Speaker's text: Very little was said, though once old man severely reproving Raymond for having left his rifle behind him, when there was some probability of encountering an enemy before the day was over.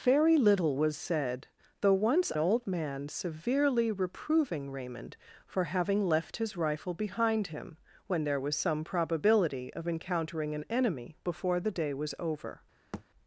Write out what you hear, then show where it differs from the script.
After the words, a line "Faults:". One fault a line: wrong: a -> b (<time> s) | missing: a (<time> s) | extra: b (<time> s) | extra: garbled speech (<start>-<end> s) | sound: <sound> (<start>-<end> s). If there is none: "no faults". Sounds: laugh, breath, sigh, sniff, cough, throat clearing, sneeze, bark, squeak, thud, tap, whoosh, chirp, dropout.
Very little was said, though once old man severely reproving Raymond for having left his rifle behind him, when there was some probability of encountering an enemy before the day was over.
Faults:
sound: thud (12.9-13.0 s)